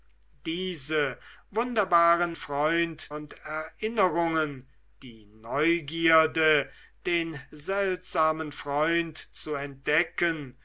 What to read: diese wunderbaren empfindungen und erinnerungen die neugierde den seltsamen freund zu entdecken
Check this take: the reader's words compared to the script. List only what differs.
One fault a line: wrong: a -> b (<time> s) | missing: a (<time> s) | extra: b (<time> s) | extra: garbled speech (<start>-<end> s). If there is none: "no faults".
wrong: empfindungen -> freund (2.3 s)